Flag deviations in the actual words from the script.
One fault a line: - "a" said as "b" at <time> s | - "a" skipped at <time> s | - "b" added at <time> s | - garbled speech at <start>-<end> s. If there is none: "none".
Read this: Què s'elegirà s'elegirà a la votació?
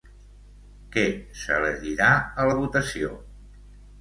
- "s'elegirà" skipped at 2.1 s